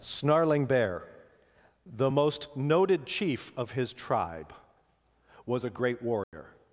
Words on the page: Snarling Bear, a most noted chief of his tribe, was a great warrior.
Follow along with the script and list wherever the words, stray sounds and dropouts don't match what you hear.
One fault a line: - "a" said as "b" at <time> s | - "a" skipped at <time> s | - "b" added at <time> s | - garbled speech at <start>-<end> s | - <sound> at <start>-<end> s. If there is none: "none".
- "a" said as "the" at 1.9 s
- dropout at 6.2-6.3 s